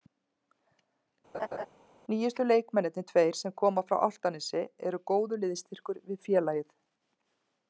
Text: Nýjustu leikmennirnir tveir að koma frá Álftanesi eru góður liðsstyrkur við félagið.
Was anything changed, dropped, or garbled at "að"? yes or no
yes